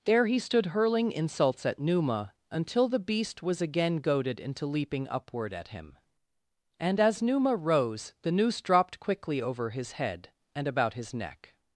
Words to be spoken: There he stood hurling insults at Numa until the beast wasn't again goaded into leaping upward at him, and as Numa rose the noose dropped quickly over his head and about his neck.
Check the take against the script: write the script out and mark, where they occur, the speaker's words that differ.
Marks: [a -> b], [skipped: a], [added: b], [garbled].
There he stood hurling insults at Numa until the beast [wasn't -> was] again goaded into leaping upward at him, and as Numa rose the noose dropped quickly over his head and about his neck.